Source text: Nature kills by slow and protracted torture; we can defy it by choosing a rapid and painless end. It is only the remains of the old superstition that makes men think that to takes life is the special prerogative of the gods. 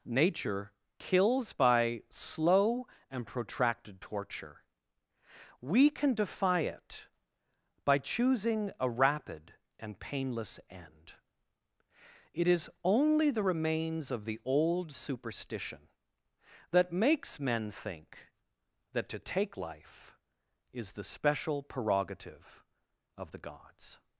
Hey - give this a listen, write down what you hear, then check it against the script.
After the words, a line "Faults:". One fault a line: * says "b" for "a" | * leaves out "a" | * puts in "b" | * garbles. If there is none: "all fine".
Nature kills by slow and protracted torture; we can defy it by choosing a rapid and painless end. It is only the remains of the old superstition that makes men think that to take life is the special prerogative of the gods.
Faults:
* says "take" for "takes"